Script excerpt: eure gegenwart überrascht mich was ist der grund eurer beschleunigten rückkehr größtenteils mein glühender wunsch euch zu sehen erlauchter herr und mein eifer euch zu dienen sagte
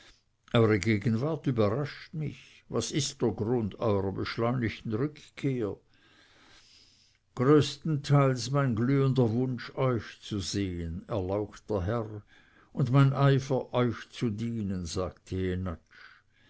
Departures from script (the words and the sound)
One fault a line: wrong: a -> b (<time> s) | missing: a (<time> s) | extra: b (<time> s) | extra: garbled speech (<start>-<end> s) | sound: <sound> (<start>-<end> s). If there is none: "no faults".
no faults